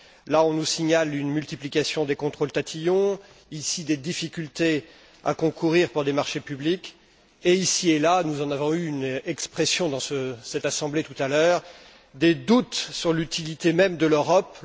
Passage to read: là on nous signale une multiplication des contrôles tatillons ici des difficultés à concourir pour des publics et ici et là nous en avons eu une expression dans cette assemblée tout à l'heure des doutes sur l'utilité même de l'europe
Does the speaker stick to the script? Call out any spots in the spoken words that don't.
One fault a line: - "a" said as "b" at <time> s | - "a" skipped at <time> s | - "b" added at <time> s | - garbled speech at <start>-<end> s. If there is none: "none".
- "marchés" added at 6.1 s